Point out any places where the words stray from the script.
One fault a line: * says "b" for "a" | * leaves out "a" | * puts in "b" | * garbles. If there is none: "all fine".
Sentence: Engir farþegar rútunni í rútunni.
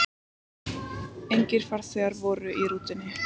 * says "voru" for "rútunni"